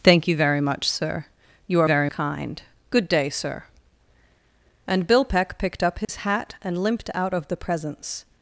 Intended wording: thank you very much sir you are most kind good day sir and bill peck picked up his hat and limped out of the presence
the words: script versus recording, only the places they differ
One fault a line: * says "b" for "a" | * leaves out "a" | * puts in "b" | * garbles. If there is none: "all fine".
* says "very" for "most"